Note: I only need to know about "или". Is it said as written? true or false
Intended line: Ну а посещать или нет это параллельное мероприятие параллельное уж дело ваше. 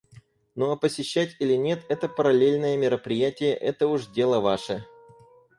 true